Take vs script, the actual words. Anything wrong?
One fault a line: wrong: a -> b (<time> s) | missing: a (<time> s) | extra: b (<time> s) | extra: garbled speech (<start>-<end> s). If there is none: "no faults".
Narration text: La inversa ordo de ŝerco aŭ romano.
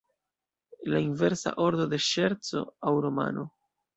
no faults